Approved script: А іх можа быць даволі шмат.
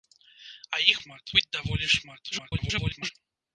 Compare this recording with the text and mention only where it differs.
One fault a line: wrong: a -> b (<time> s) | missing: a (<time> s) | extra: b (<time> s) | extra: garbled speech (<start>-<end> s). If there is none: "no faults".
wrong: можа -> шмат (1.0 s)
extra: garbled speech (2.3-3.1 s)